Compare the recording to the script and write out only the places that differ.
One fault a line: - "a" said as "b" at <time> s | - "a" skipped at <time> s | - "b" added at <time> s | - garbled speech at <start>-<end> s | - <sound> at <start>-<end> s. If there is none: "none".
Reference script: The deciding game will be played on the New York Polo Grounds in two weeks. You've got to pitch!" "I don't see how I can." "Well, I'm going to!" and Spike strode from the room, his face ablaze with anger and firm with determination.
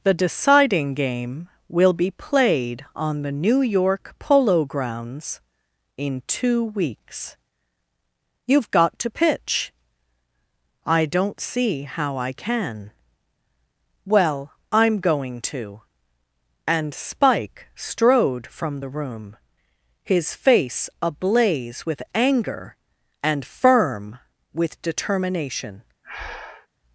- breath at 26.0-26.7 s